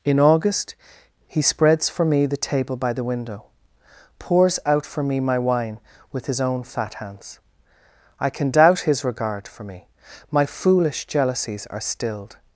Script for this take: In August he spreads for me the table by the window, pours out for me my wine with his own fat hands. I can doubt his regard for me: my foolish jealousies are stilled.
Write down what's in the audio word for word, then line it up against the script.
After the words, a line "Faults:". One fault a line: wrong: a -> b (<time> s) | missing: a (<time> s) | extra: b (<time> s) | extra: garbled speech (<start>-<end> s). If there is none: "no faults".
In August he spreads for me the table by the window, pours out for me my wine with his own fat hands. I can doubt his regard for me: my foolish jealousies are stilled.
Faults:
no faults